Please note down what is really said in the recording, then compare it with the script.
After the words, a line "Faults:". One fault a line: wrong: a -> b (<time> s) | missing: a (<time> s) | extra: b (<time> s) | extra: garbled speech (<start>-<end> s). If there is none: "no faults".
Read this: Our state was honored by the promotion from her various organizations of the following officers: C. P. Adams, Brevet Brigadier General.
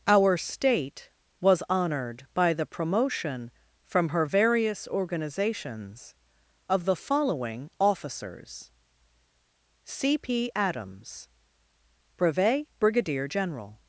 Our state was honored by the promotion from her various organizations of the following officers: C. P. Adams, Brevet Brigadier General.
Faults:
no faults